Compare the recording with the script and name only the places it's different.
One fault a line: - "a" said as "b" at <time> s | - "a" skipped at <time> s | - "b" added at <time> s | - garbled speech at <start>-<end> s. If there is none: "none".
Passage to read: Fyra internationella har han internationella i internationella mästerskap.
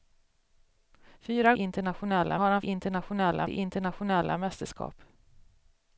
none